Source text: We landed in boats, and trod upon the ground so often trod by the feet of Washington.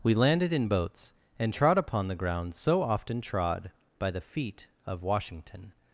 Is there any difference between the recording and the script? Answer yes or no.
no